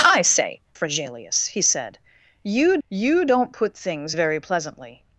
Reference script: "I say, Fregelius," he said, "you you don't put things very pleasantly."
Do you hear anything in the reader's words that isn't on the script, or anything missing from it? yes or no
no